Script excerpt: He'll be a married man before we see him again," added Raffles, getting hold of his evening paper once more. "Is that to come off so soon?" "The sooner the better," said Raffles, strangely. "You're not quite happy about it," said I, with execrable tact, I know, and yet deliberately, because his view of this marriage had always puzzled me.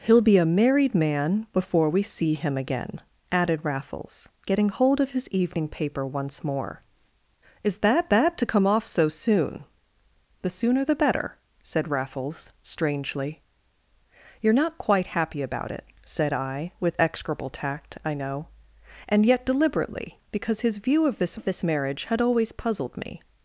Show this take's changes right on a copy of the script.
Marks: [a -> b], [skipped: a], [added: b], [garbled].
He'll be a married man before we see him again," added Raffles, getting hold of his evening paper once more. "Is that [added: that] to come off so soon?" "The sooner the better," said Raffles, strangely. "You're not quite happy about it," said I, with execrable tact, I know, and yet deliberately, because his view of this [added: of this] marriage had always puzzled me.